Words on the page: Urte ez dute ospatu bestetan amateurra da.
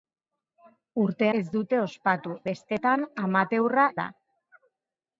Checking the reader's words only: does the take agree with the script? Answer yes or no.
yes